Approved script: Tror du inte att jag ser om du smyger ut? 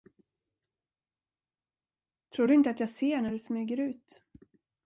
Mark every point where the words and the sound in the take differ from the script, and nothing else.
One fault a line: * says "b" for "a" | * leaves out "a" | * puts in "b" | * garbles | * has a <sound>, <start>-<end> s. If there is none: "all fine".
* says "när" for "om"